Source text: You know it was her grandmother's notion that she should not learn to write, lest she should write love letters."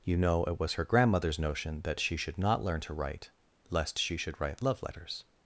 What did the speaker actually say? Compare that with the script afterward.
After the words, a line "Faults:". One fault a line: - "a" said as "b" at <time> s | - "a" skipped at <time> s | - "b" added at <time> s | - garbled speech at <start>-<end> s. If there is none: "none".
You know it was her grandmother's notion that she should not learn to write, lest she should write love letters."
Faults:
none